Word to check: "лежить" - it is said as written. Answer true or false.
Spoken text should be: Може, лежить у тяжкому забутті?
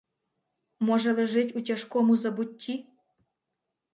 true